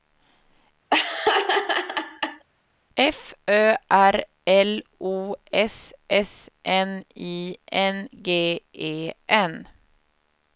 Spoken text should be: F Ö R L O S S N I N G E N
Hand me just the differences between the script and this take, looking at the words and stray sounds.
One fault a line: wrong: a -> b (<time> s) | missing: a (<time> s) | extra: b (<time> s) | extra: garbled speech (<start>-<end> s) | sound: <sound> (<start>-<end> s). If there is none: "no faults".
sound: laugh (0.9-2.4 s)